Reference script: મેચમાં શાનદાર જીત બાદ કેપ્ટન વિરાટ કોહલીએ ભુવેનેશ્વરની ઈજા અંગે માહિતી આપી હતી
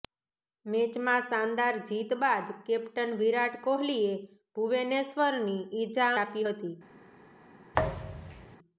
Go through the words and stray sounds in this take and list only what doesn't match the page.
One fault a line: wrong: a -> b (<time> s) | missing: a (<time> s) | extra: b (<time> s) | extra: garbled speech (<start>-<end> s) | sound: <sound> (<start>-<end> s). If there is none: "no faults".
missing: અંગે માહિતી (6.1 s)
sound: thud (7.7-8.6 s)